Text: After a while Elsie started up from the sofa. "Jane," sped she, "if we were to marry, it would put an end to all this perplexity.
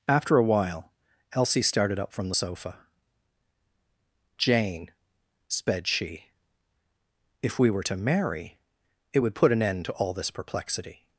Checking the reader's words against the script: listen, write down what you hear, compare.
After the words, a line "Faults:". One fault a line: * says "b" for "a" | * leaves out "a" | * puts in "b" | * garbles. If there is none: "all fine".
After a while Elsie started up from the sofa. "Jane," sped she, "if we were to marry, it would put an end to all this perplexity.
Faults:
all fine